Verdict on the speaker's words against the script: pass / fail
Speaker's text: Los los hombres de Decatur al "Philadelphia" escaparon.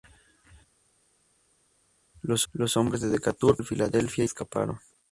pass